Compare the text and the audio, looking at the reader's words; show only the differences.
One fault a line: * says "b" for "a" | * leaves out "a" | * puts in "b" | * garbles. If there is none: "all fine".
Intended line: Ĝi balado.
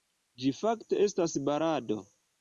* puts in "fakte estas"